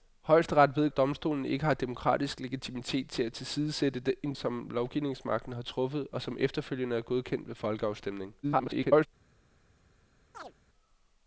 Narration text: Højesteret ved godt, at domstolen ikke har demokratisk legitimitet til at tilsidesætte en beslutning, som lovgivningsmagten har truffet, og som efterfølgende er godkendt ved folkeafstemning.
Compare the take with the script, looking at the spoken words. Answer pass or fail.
fail